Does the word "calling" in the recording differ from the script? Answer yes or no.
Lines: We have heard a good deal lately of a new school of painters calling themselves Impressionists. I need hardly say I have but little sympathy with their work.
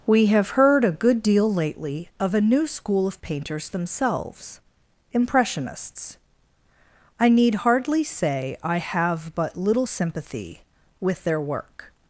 yes